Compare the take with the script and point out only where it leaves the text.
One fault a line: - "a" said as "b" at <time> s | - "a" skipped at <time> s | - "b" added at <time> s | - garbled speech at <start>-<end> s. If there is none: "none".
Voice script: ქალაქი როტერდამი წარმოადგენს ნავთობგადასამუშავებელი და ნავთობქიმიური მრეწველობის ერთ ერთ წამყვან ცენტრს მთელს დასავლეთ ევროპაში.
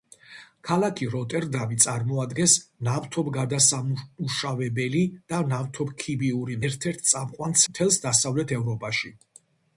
- "მრეწველობის" skipped at 6.6 s
- "ცენტრს" skipped at 7.6 s